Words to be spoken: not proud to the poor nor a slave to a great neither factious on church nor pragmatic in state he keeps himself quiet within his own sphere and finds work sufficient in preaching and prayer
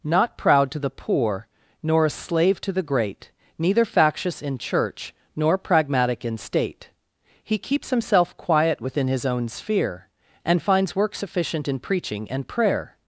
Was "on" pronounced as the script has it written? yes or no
no